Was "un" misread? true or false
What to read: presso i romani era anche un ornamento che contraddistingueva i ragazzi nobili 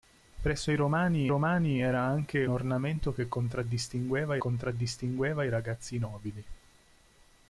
true